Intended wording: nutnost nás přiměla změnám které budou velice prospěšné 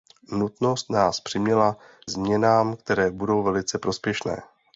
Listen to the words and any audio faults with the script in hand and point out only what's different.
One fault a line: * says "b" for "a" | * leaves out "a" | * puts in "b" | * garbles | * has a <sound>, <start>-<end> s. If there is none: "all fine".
all fine